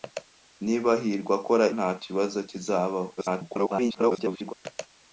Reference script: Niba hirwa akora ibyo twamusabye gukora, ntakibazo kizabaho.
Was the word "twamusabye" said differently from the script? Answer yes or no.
yes